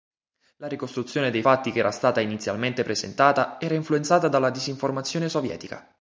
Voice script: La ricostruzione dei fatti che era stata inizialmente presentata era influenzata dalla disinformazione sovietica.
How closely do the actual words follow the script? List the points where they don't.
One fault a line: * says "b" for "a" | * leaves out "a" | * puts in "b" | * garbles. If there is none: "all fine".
all fine